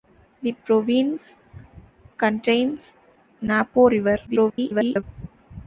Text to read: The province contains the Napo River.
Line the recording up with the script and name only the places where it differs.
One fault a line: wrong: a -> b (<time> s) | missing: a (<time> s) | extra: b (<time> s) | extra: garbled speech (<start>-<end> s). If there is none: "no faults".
missing: the (3.0 s)
extra: garbled speech (4.3-5.0 s)